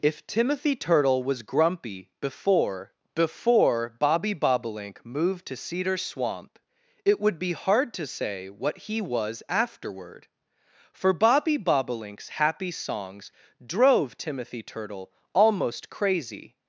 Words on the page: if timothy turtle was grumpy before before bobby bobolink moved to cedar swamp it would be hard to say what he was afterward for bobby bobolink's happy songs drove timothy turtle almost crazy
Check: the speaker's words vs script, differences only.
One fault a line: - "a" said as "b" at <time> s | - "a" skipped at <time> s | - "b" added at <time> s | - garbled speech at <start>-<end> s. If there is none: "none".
none